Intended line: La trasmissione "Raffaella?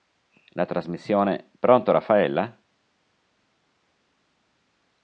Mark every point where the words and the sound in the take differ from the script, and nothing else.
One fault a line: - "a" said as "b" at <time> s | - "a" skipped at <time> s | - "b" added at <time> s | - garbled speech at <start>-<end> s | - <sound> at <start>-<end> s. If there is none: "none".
- "Pronto" added at 1.6 s